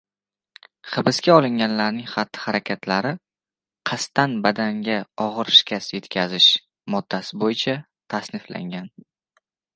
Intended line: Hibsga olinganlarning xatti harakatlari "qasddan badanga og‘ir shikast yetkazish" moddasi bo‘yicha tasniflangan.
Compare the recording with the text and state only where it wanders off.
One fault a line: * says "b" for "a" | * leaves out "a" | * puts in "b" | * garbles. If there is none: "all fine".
all fine